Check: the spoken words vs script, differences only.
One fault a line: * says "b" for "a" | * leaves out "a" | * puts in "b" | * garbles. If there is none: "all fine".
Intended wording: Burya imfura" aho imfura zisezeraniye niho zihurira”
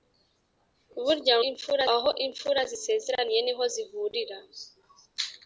all fine